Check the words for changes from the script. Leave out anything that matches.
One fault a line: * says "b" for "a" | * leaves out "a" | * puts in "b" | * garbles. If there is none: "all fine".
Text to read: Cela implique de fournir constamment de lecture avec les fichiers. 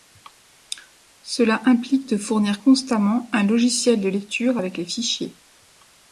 * puts in "un logiciel"